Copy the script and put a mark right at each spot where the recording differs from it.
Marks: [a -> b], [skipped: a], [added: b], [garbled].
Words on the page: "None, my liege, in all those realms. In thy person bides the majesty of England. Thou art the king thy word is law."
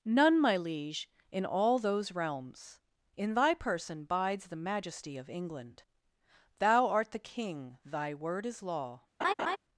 "None, my liege, in all those realms. In thy person bides the majesty of England. Thou art the king thy word is law."